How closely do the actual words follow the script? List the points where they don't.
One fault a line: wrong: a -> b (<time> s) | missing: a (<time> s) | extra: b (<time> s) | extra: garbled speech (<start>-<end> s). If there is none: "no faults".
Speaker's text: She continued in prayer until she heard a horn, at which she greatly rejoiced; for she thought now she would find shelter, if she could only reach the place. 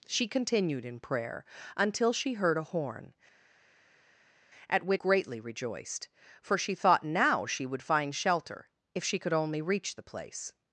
missing: she (5.0 s)